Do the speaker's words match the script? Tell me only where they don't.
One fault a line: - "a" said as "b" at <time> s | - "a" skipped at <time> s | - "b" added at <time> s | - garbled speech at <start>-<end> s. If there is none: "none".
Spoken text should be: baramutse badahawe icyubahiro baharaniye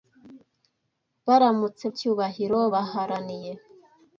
- "badahawe" skipped at 1.9 s